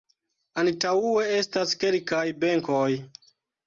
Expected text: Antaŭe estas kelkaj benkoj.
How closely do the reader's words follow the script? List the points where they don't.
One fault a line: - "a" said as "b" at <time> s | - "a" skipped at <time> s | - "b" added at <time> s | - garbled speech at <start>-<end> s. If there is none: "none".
none